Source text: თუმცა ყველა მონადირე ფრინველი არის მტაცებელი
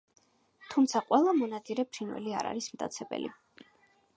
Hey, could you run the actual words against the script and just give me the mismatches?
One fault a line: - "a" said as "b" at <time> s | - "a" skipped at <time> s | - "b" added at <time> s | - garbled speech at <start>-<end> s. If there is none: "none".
- "არ" added at 2.4 s